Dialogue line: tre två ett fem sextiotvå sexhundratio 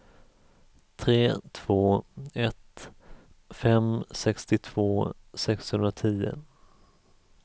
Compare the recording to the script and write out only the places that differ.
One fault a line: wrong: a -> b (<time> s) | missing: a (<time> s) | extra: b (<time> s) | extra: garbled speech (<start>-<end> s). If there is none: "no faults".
no faults